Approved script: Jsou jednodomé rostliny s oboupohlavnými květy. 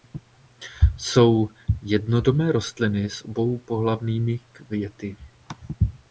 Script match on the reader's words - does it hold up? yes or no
yes